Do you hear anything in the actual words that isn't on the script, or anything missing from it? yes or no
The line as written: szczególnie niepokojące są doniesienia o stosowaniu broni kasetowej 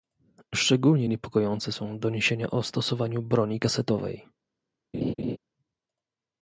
no